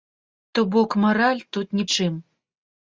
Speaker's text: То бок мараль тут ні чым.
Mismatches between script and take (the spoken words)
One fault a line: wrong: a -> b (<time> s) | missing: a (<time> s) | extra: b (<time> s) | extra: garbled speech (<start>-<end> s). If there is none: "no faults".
no faults